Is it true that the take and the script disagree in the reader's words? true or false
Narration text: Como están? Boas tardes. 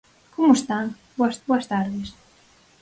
true